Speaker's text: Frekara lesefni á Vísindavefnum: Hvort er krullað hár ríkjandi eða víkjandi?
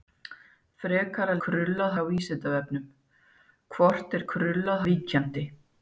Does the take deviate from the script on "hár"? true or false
true